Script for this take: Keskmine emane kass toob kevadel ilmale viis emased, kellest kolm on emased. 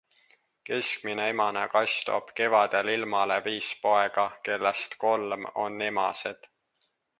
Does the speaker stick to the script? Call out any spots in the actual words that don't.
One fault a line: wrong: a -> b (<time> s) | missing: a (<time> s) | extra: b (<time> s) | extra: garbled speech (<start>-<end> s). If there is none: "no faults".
wrong: emased -> poega (3.8 s)